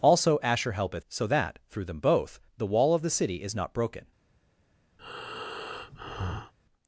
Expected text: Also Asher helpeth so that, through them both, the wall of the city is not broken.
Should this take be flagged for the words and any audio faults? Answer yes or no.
yes